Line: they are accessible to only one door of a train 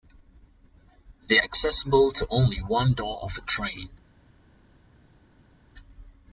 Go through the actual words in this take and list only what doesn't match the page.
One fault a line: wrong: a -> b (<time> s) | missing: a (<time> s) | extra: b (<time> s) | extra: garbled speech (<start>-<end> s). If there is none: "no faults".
missing: are (1.4 s)